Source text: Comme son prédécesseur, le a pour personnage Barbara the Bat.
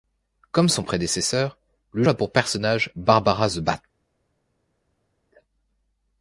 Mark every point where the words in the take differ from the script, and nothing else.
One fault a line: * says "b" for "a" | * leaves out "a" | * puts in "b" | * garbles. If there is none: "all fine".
all fine